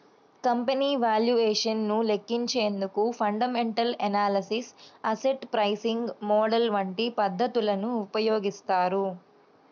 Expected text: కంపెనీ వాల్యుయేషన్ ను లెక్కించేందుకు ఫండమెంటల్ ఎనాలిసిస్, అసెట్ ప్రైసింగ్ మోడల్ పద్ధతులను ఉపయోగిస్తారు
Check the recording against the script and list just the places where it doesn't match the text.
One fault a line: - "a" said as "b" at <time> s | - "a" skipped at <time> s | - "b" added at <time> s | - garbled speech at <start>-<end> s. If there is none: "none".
- "వంటి" added at 6.8 s